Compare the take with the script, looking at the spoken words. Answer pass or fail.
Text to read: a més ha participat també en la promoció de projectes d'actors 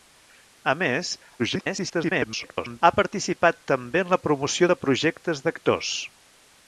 fail